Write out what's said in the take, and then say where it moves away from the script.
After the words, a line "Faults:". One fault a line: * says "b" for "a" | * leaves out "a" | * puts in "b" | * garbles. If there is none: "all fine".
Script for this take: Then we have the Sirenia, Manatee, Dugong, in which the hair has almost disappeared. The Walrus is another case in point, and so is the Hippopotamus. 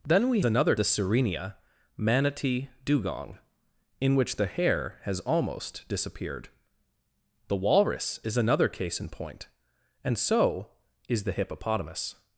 Then we another the Sirenia, Manatee, Dugong, in which the hair has almost disappeared. The Walrus is another case in point, and so is the Hippopotamus.
Faults:
* says "another" for "have"